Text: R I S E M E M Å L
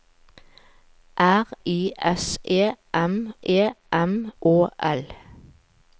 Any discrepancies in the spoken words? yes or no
no